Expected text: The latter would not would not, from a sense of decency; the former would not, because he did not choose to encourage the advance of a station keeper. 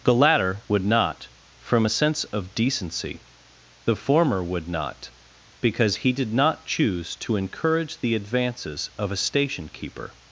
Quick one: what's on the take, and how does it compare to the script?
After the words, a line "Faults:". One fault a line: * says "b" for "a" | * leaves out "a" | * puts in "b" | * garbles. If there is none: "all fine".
The latter would not, from a sense of decency; the former would not, because he did not choose to encourage the advances of a station keeper.
Faults:
* leaves out "would not"
* says "advances" for "advance"